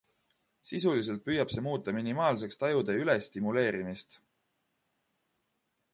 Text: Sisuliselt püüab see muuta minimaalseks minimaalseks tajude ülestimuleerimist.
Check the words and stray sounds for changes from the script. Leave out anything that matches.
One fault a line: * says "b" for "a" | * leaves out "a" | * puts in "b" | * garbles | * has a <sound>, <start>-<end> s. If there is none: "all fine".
* leaves out "minimaalseks"